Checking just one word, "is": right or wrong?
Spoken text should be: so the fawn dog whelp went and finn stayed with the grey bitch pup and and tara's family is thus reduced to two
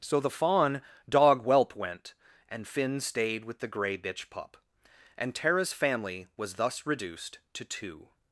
wrong